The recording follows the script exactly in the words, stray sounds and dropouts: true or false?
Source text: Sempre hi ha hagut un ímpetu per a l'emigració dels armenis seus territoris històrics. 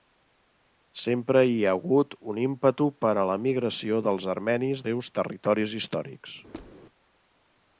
false